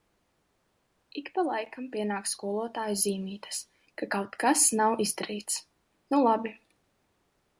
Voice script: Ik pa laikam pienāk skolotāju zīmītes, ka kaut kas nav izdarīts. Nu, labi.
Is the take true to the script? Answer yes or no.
yes